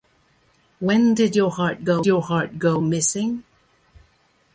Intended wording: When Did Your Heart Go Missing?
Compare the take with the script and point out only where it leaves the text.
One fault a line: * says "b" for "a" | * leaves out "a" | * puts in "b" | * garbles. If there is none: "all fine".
* puts in "Your Heart Go"